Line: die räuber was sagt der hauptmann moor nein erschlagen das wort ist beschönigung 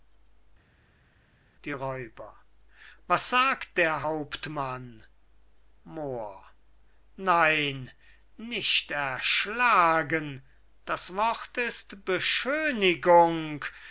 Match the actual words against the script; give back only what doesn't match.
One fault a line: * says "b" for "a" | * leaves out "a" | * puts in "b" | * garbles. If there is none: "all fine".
* puts in "nicht"